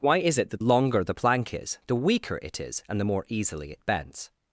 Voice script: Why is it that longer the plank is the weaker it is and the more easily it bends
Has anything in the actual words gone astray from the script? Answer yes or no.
no